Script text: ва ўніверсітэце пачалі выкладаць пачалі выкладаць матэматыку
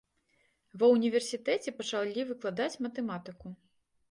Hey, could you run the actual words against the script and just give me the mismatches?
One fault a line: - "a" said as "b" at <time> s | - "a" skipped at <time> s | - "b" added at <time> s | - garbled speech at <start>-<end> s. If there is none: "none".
- "пачалі выкладаць" skipped at 2.7 s